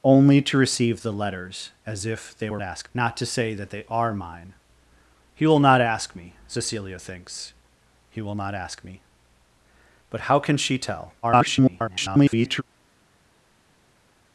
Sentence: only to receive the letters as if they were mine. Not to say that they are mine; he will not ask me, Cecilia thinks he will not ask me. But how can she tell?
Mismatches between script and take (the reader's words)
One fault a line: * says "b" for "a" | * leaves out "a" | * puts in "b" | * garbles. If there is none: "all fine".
* says "ask" for "mine"
* garbles